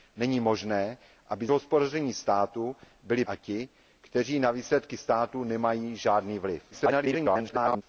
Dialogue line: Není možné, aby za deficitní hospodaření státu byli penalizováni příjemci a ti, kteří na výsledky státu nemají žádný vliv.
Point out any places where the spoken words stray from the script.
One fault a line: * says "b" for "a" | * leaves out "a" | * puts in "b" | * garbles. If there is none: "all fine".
* leaves out "za deficitní"
* leaves out "penalizováni příjemci"
* garbles